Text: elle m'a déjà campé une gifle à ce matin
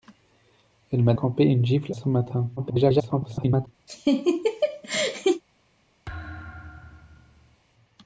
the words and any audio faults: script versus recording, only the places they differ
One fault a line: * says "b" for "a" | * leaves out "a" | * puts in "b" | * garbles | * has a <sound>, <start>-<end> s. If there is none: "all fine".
* leaves out "déjà"
* leaves out "à"
* garbles
* has a laugh, 3.9-5.4 s
* has a thud, 6.1-7.6 s